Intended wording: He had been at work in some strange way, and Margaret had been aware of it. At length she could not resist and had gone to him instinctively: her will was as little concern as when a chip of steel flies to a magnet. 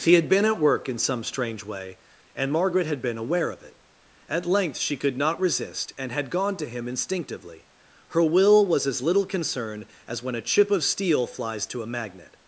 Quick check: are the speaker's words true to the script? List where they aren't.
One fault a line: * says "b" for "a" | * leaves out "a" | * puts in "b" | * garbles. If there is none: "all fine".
all fine